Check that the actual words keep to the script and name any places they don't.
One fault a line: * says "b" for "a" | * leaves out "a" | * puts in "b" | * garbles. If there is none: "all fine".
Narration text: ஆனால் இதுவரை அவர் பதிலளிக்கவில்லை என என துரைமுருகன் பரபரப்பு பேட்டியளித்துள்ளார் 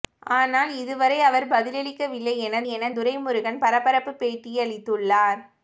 all fine